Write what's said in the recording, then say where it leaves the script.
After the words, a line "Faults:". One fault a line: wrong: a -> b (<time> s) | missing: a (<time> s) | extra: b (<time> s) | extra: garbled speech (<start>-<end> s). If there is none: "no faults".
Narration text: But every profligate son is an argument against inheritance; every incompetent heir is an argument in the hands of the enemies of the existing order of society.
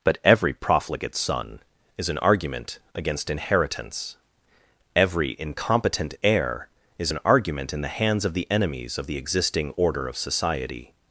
But every profligate son is an argument against inheritance; every incompetent heir is an argument in the hands of the enemies of the existing order of society.
Faults:
no faults